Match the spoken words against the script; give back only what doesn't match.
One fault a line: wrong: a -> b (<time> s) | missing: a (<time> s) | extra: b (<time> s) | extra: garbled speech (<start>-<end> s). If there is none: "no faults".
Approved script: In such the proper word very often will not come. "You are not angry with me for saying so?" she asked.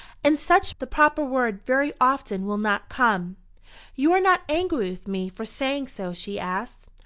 no faults